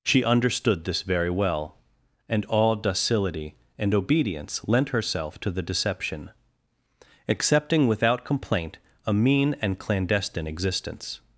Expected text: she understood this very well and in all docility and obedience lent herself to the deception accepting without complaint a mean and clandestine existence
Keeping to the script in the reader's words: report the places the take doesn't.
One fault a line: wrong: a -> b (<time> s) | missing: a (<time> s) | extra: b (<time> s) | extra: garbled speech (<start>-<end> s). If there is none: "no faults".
missing: in (2.5 s)